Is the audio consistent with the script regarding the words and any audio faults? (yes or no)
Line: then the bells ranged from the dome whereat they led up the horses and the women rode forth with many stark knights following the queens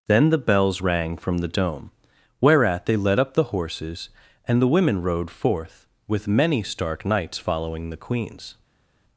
no